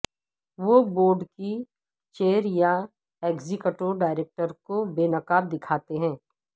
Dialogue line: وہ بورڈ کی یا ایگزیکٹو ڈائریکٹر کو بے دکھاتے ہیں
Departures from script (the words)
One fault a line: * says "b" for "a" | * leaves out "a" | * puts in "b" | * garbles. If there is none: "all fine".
* puts in "چیئر"
* puts in "نقاب"